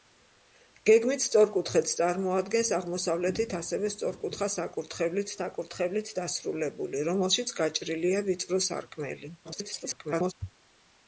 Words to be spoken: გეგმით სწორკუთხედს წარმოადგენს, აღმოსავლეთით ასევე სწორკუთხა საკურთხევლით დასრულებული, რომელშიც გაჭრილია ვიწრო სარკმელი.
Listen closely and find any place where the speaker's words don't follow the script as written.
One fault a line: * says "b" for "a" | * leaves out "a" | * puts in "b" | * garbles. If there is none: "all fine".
* puts in "საკურთხევლით"
* garbles